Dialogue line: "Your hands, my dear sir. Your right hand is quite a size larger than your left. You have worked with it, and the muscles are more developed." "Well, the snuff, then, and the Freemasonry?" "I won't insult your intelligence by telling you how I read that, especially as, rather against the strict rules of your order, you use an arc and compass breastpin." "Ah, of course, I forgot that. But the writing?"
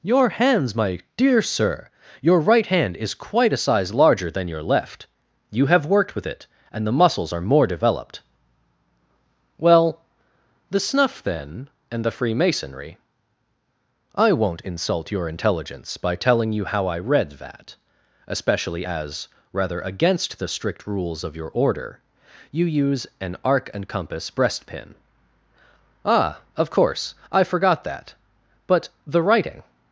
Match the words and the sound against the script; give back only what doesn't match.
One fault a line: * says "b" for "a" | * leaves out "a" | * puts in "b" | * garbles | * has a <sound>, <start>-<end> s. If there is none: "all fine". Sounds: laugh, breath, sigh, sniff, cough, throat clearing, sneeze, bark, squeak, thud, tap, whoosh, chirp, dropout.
all fine